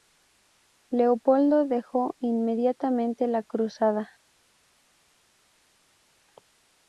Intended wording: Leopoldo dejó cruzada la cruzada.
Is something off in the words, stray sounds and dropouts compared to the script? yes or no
yes